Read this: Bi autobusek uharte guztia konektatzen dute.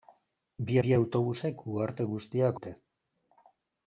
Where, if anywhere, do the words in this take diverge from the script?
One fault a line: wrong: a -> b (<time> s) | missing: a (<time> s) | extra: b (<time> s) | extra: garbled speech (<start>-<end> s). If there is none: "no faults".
extra: bi (0.8 s)
missing: konektatzen (2.5 s)